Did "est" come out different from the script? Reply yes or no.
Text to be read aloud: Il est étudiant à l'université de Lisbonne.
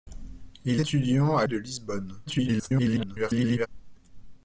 yes